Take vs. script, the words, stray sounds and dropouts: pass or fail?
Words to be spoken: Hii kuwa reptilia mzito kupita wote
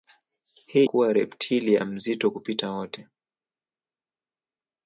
pass